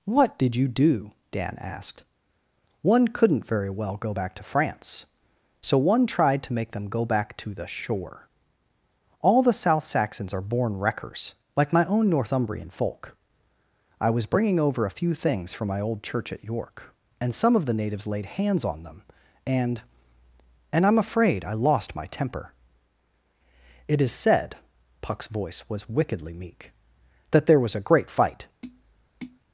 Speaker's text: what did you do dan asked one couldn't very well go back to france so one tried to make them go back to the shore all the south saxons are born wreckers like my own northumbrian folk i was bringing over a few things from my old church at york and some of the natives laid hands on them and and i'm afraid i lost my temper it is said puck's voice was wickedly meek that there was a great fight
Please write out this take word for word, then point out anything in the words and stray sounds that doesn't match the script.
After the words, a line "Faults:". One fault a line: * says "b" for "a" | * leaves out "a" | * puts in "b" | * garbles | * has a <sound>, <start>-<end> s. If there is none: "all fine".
what did you do dan asked one couldn't very well go back to france so one tried to make them go back to the shore all the south saxons are born wreckers like my own northumbrian folk i was bringing over a few things from my old church at york and some of the natives laid hands on them and and i'm afraid i lost my temper it is said puck's voice was wickedly meek that there was a great fight
Faults:
* has a tap, 28.6-29.4 s